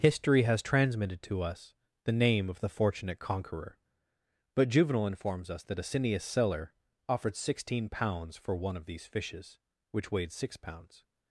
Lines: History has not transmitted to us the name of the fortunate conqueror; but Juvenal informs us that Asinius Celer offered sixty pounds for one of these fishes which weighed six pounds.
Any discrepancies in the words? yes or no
yes